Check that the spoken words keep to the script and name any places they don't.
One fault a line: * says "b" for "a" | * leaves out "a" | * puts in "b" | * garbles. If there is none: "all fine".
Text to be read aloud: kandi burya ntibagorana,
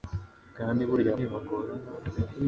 all fine